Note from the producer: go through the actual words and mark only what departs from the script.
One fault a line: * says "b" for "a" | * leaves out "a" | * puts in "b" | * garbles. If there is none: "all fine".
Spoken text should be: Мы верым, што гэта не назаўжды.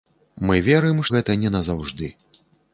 * leaves out "што"